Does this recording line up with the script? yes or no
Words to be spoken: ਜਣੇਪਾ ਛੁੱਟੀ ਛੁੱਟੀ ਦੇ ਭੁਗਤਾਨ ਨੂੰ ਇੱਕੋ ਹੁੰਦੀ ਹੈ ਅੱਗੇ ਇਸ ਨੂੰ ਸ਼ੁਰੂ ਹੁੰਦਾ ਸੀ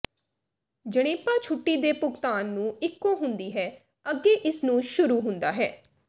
no